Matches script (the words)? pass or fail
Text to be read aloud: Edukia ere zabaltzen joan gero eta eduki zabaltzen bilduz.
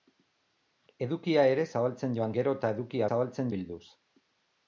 pass